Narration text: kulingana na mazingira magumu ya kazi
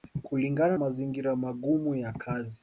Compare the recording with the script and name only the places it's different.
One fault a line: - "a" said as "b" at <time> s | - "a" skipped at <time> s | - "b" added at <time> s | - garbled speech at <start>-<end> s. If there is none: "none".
- "na" skipped at 0.8 s